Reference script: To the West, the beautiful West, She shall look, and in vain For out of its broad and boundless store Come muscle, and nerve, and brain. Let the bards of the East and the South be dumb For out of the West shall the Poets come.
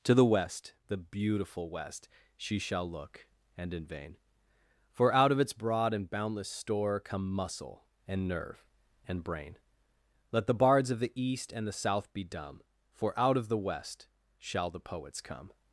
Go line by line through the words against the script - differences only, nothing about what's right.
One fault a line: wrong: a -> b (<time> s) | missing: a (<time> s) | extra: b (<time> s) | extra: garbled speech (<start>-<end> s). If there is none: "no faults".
no faults